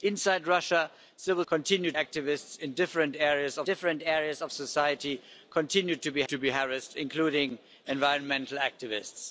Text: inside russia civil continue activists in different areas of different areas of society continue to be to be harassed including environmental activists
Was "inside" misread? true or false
false